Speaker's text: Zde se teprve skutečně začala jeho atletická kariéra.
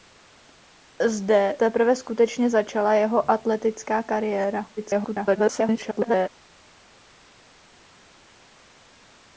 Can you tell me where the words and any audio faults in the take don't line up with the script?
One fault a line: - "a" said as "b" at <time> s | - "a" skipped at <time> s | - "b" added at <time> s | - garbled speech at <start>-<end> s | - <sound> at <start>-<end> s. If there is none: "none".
- "se" skipped at 1.6 s
- garbled speech at 4.8-6.3 s